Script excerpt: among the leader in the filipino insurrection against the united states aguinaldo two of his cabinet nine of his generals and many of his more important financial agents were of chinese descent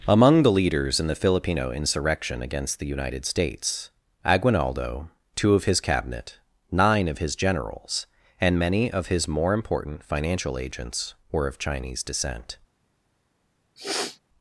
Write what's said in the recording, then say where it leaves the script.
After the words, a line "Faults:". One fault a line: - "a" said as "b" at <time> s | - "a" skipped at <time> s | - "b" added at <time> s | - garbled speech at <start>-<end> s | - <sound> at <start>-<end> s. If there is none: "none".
among the leaders in the filipino insurrection against the united states aguinaldo two of his cabinet nine of his generals and many of his more important financial agents were of chinese descent
Faults:
- "leader" said as "leaders" at 0.5 s
- sniff at 13.8-14.2 s